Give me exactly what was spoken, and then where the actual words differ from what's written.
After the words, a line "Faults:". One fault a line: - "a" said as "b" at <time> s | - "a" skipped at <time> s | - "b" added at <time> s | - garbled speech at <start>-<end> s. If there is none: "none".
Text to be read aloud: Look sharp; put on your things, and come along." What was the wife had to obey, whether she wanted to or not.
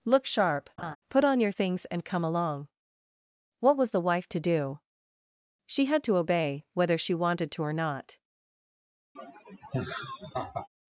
Look sharp; put on your things, and come along." What was the wife to do? She had to obey, whether she wanted to or not.
Faults:
- "to do She" added at 4.3 s